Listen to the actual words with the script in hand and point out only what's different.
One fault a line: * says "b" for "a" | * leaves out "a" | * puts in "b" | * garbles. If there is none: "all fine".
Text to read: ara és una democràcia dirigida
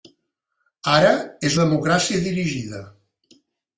* leaves out "una"